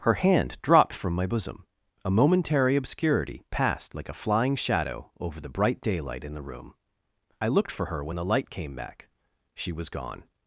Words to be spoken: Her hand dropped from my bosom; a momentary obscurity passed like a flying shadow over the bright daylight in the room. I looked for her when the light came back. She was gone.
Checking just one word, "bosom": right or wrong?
right